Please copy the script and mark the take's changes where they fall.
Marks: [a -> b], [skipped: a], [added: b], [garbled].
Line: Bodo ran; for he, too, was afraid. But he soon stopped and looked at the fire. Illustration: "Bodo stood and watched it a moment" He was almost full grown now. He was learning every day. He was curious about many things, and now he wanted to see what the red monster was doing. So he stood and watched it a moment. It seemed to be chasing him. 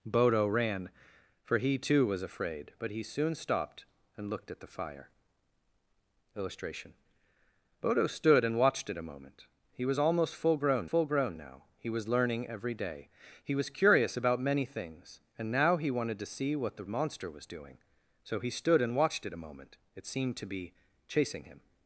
Bodo ran; for he, too, was afraid. But he soon stopped and looked at the fire. Illustration: "Bodo stood and watched it a moment" He was almost full grown [added: full grown] now. He was learning every day. He was curious about many things, and now he wanted to see what the [skipped: red] monster was doing. So he stood and watched it a moment. It seemed to be chasing him.